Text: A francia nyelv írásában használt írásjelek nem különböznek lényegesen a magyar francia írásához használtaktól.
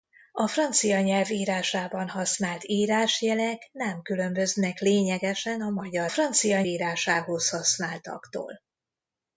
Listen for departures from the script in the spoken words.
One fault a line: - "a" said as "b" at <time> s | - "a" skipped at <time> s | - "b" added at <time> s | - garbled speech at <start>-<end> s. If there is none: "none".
none